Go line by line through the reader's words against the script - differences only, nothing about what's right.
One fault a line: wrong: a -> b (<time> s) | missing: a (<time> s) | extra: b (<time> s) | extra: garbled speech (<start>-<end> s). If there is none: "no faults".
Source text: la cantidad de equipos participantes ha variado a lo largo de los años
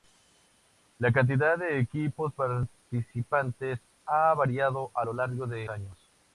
missing: los (5.7 s)